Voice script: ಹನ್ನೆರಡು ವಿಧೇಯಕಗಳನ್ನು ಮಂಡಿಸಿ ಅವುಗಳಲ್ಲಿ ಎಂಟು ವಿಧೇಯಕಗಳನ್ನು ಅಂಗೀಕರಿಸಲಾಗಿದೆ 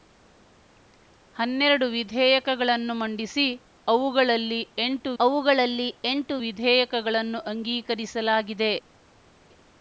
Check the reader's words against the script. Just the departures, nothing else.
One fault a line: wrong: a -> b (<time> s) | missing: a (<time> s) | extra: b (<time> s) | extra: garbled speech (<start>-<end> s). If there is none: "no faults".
extra: ಅವುಗಳಲ್ಲಿ ಎಂಟು (5.2 s)